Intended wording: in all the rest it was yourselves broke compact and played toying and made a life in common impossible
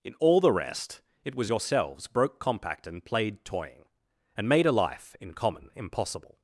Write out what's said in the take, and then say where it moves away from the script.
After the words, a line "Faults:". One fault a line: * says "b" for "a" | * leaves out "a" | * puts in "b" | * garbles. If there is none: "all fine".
in all the rest it was yourselves broke compact and played toying and made a life in common impossible
Faults:
all fine